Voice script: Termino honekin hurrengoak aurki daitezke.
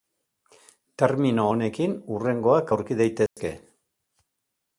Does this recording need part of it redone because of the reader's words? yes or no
no